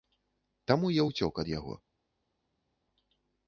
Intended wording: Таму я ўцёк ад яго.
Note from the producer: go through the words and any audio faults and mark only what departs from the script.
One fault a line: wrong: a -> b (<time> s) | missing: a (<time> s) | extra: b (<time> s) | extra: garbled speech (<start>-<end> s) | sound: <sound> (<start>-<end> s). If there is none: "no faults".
no faults